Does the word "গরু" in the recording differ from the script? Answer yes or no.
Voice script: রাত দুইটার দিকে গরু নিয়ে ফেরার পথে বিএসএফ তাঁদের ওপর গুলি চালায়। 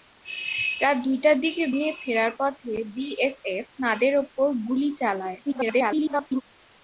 yes